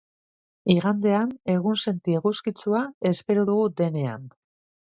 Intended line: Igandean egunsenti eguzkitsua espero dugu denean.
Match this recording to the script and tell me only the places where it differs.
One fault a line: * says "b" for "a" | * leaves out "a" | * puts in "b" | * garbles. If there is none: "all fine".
all fine